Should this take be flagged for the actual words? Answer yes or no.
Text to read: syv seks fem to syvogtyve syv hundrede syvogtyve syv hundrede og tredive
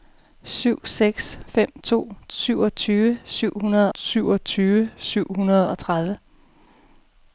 no